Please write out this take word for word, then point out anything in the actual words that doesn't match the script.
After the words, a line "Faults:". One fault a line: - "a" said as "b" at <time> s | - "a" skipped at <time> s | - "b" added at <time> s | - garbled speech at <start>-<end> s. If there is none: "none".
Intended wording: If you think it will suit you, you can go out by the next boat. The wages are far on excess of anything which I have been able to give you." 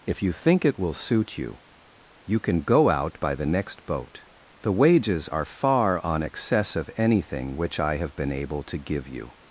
If you think it will suit you, you can go out by the next boat. The wages are far on excess of anything which I have been able to give you."
Faults:
none